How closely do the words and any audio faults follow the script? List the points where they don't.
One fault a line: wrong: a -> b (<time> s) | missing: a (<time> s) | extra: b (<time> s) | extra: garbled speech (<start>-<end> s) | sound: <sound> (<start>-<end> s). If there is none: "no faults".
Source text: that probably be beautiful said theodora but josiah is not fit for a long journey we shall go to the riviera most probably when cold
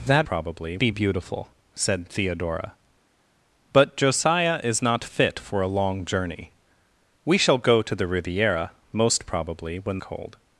no faults